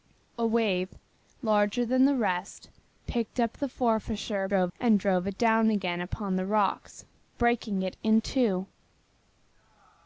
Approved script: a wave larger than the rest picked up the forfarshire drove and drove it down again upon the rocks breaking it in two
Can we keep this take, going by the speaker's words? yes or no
yes